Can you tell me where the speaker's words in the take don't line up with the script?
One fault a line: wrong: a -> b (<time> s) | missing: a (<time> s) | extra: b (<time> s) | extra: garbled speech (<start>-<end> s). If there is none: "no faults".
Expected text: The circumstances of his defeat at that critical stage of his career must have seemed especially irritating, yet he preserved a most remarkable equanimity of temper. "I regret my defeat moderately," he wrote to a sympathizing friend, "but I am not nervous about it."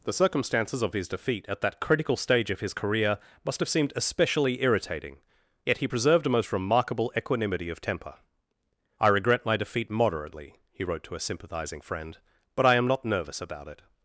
no faults